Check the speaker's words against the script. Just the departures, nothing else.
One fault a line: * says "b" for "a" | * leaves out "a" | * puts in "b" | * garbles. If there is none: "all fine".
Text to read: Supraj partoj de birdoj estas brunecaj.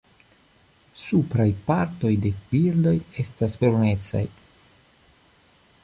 all fine